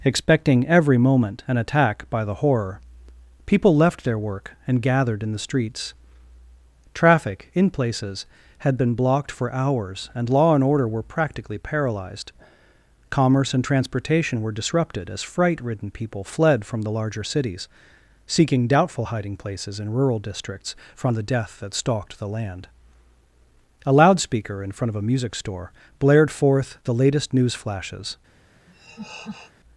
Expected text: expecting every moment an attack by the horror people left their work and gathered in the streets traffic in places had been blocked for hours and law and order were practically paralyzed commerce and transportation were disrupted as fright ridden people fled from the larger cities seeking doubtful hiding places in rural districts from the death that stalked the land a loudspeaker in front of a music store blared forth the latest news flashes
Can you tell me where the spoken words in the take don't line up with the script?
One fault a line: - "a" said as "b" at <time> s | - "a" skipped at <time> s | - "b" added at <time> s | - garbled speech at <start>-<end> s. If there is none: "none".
none